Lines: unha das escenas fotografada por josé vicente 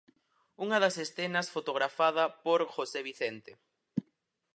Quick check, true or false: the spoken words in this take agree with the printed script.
true